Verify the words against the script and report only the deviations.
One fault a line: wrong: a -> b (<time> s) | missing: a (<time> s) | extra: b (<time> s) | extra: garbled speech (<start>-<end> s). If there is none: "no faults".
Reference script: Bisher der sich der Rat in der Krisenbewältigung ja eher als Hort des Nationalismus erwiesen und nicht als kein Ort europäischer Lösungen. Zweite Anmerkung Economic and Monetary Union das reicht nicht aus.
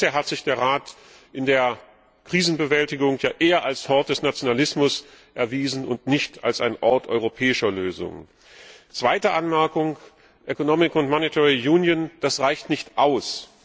wrong: der -> hat (0.1 s)
wrong: kein -> ein (6.6 s)